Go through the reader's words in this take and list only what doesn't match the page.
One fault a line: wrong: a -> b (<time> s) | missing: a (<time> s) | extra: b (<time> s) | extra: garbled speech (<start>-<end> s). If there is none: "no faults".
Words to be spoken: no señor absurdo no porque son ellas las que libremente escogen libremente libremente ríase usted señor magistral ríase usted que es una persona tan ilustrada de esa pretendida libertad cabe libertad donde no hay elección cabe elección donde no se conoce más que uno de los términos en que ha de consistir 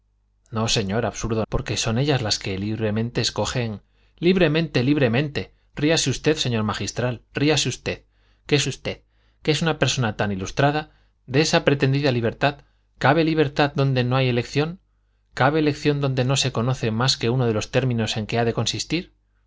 missing: no (1.4 s)
extra: usted que es (8.7 s)